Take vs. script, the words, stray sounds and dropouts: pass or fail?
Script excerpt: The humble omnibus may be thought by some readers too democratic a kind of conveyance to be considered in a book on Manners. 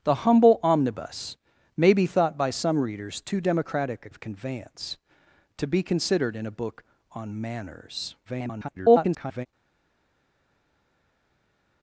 fail